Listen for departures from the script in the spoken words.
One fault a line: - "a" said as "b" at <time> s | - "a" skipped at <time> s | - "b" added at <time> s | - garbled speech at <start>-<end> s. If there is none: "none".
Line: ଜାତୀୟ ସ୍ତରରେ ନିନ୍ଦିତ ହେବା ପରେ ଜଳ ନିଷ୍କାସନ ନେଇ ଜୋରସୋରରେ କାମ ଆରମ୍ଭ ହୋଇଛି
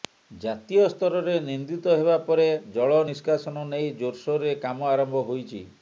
none